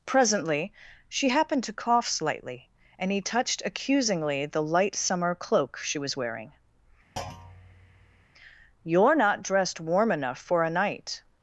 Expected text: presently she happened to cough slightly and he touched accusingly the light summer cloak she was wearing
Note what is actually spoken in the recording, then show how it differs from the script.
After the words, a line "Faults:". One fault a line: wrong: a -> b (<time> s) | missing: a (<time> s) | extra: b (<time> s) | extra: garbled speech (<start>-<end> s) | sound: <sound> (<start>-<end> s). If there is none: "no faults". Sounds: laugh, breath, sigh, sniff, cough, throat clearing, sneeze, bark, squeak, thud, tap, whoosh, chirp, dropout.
presently she happened to cough slightly and he touched accusingly the light summer cloak she was wearing you're not dressed warm enough for a night
Faults:
sound: thud (7.2-8.3 s)
extra: you're not dressed warm enough for a night (8.8 s)